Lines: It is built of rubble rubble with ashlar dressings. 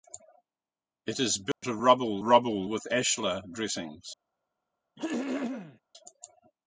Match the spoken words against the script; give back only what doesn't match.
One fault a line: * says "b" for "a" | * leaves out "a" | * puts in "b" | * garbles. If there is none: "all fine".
all fine